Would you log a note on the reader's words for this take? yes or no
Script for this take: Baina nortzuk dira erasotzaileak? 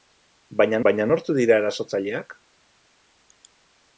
yes